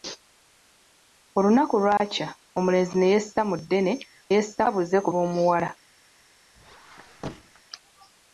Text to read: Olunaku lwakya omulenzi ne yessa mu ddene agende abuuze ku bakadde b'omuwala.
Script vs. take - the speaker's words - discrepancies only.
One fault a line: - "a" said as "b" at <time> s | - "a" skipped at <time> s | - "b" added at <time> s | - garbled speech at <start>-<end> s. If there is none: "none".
- "agende" said as "yessa" at 4.4 s
- "bakadde" skipped at 5.1 s